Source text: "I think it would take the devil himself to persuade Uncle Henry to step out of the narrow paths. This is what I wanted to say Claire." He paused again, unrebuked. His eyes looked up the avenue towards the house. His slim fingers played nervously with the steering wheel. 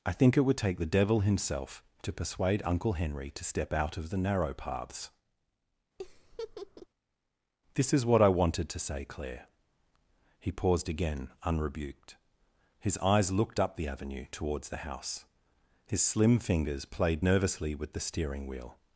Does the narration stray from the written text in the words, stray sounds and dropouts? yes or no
yes